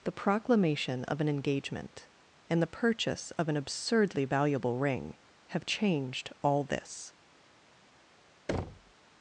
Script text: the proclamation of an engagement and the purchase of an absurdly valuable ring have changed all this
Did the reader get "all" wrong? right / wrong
right